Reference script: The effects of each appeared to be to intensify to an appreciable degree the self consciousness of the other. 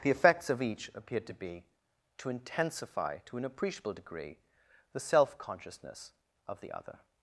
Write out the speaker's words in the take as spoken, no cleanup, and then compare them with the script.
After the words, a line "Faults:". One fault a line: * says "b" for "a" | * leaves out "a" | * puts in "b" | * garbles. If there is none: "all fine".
The effects of each appeared to be to intensify to an appreciable degree the self consciousness of the other.
Faults:
all fine